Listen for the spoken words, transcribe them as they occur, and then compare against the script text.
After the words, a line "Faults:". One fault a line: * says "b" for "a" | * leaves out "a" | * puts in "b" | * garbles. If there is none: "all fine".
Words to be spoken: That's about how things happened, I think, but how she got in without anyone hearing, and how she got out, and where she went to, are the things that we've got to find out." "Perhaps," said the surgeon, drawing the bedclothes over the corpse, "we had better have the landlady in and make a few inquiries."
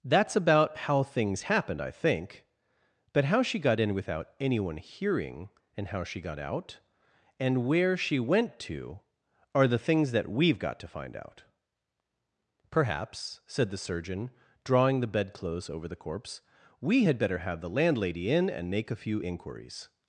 That's about how things happened, I think, but how she got in without anyone hearing, and how she got out, and where she went to, are the things that we've got to find out." "Perhaps," said the surgeon, drawing the bedclothes over the corpse, "we had better have the landlady in and make a few inquiries."
Faults:
all fine